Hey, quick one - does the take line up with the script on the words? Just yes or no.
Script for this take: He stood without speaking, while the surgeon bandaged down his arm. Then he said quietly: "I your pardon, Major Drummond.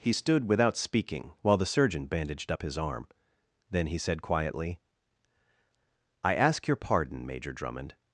no